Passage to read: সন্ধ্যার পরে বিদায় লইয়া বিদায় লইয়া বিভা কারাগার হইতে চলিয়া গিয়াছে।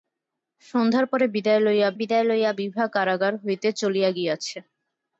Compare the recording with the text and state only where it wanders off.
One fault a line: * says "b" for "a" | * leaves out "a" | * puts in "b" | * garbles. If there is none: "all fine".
all fine